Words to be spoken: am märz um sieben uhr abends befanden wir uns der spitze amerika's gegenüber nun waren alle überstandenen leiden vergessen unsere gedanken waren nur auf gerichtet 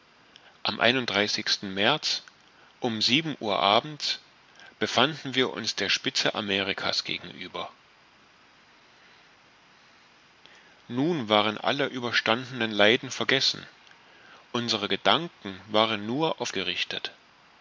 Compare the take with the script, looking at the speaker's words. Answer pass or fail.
pass